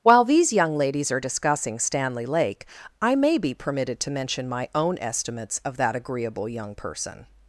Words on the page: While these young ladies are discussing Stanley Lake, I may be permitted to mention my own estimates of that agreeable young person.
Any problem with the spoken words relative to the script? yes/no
no